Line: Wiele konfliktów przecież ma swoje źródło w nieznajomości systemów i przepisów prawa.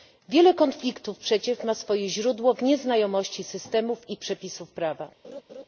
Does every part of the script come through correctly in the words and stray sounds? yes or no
no